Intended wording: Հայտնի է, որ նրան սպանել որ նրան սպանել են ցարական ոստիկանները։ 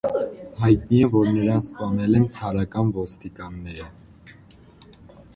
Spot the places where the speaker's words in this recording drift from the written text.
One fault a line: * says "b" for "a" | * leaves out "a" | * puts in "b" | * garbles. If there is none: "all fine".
* leaves out "որ նրան սպանել"